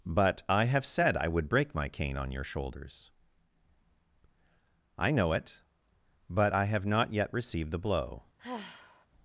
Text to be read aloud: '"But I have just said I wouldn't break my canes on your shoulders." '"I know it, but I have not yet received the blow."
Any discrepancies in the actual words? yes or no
yes